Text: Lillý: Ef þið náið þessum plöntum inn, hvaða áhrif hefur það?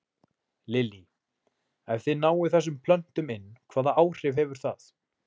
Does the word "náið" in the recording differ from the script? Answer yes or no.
no